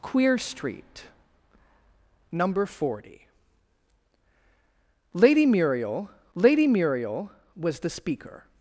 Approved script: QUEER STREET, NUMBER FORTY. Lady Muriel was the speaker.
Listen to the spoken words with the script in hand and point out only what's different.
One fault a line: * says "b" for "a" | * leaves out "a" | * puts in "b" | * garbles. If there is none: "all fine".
* puts in "lady Muriel"